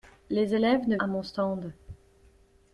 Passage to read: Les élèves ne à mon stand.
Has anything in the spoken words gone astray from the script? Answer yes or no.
no